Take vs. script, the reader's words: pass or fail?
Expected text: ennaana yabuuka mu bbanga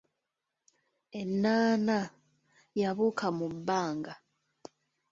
pass